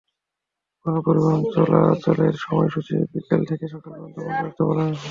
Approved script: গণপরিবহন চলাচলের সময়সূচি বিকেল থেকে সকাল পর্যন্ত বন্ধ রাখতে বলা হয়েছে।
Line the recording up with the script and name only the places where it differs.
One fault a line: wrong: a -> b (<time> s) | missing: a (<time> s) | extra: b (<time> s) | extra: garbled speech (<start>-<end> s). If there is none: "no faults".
no faults